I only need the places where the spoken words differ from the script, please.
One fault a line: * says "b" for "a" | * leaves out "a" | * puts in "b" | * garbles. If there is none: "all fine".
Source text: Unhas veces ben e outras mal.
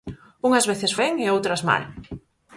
all fine